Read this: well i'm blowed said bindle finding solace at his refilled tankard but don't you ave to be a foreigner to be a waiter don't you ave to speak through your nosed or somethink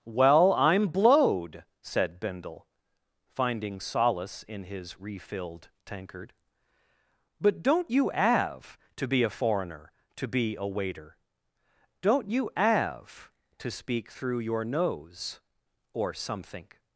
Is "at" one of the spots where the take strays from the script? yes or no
yes